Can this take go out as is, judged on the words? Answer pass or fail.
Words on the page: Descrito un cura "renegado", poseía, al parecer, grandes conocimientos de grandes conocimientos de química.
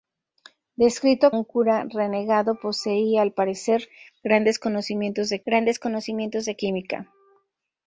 pass